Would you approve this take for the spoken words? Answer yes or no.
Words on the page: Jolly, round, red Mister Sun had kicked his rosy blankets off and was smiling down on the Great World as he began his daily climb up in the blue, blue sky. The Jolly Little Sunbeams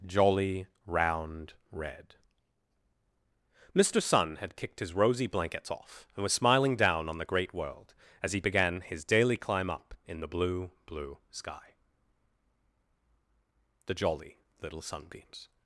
yes